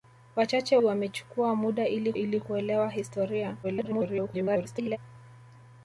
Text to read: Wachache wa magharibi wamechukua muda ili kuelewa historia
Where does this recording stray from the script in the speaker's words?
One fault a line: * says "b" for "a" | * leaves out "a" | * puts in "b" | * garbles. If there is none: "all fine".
* leaves out "wa magharibi"
* puts in "ili"
* garbles